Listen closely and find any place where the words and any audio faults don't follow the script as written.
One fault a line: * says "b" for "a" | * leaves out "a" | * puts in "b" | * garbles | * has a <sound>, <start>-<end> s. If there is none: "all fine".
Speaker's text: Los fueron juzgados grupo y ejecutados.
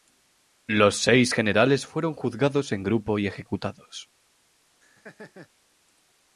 * puts in "seis generales"
* puts in "en"
* has a laugh, 4.8-5.5 s